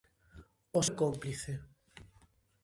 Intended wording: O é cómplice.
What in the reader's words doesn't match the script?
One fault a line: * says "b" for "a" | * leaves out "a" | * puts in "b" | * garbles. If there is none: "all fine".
all fine